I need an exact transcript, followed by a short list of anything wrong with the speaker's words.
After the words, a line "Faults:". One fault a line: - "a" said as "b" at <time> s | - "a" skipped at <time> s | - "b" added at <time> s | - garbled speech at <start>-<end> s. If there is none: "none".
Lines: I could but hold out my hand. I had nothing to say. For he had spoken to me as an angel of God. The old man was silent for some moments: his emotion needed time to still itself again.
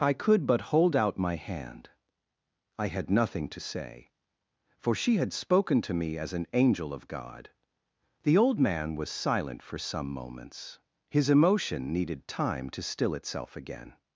I could but hold out my hand. I had nothing to say. For she had spoken to me as an angel of God. The old man was silent for some moments: his emotion needed time to still itself again.
Faults:
- "he" said as "she" at 5.0 s